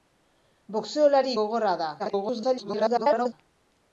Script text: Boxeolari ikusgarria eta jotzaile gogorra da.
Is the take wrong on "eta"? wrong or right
wrong